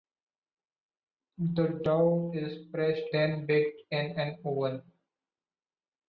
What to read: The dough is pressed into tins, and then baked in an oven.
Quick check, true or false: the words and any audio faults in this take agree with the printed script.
false